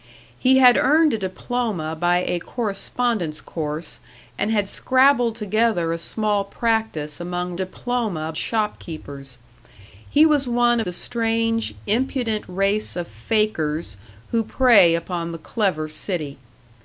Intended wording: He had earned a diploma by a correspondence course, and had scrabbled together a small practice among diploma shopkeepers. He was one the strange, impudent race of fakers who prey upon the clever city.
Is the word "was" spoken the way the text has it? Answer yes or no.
yes